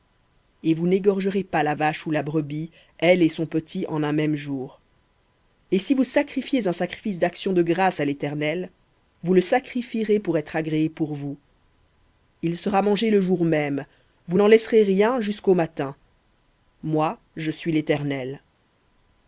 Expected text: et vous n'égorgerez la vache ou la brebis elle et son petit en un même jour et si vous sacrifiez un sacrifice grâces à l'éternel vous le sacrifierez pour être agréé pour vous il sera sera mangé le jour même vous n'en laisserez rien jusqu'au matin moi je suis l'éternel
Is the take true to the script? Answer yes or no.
no